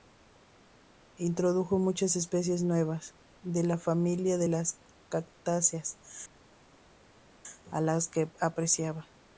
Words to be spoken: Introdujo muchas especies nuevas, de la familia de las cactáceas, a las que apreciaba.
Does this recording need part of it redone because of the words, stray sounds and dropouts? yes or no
no